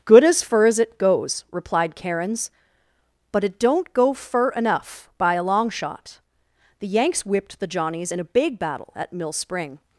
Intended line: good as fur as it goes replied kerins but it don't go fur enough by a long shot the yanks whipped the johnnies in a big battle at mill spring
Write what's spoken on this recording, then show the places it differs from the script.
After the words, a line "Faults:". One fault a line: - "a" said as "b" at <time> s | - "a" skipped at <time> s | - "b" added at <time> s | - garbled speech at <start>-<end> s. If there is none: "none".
good as fur as it goes replied kerins but it don't go fur enough by a long shot the yanks whipped the johnnies in a big battle at mill spring
Faults:
none